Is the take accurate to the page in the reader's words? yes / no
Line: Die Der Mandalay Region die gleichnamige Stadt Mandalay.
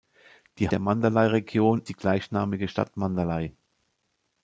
yes